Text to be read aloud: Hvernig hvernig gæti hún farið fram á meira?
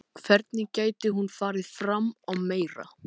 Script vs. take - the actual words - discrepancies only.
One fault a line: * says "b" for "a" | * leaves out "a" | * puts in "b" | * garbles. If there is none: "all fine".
* leaves out "hvernig"